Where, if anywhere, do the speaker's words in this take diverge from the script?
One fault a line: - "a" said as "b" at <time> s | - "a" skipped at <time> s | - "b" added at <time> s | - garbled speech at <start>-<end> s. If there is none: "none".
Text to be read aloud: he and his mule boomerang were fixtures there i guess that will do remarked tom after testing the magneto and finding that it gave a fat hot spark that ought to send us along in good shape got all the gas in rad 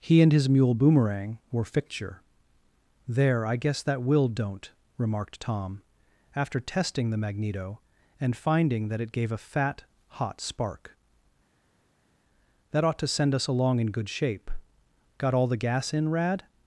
- "fixtures" said as "fixture" at 1.6 s
- "do" said as "don't" at 4.3 s